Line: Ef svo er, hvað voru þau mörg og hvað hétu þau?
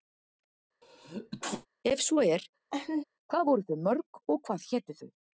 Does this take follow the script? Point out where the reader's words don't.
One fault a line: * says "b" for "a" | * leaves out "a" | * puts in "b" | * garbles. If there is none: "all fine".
all fine